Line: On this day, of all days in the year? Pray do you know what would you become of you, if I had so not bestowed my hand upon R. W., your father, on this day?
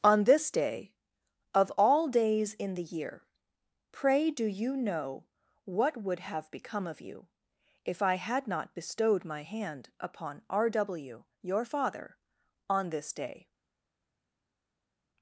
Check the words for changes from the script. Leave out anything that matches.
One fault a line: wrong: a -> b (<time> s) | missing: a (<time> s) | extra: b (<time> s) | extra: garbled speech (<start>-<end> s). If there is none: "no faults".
wrong: you -> have (6.2 s)
missing: so (8.5 s)